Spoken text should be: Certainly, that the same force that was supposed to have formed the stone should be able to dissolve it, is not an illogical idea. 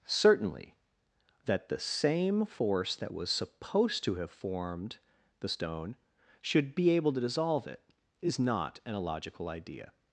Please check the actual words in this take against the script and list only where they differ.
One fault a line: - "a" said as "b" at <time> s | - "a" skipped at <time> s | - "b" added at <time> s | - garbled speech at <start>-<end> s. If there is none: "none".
none